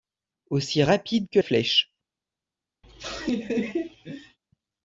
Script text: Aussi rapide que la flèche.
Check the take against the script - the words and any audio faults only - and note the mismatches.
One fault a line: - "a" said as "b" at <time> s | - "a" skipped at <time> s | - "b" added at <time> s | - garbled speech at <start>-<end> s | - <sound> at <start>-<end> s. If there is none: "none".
- "la" skipped at 1.4 s
- laugh at 2.8-4.4 s